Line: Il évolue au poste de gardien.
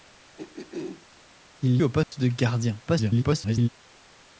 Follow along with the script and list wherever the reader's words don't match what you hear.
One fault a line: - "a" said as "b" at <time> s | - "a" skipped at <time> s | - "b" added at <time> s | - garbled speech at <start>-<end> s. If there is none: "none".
- "évolue" skipped at 1.8 s
- garbled speech at 2.9-3.7 s